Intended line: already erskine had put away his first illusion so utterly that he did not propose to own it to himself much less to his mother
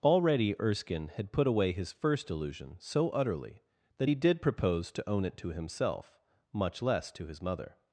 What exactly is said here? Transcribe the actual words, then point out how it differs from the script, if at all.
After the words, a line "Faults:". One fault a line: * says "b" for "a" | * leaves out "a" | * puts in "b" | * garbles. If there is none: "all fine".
already erskine had put away his first illusion so utterly that he did propose to own it to himself much less to his mother
Faults:
* leaves out "not"